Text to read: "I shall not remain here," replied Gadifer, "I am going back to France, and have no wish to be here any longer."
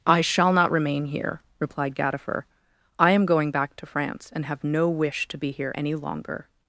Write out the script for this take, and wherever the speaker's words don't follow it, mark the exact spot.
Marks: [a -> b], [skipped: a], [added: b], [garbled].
"I shall not remain here," replied Gadifer, "I am going back to France, and have no wish to be here any longer."